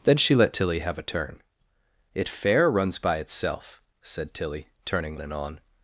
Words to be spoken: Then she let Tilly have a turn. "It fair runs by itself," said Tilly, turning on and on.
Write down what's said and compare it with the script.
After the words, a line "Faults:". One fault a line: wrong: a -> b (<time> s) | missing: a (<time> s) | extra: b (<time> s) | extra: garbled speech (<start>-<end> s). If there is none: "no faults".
Then she let Tilly have a turn. "It fair runs by itself," said Tilly, turning and on.
Faults:
missing: on (5.2 s)